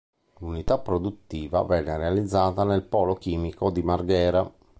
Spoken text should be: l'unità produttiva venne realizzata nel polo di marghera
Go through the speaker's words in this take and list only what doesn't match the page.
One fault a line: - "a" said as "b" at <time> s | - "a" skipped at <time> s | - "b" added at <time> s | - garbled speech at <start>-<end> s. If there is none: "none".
- "chimico" added at 3.2 s